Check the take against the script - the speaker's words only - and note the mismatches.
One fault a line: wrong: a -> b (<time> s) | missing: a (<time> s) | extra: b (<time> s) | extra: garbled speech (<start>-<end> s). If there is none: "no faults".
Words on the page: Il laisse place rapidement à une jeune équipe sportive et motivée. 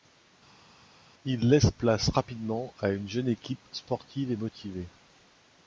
no faults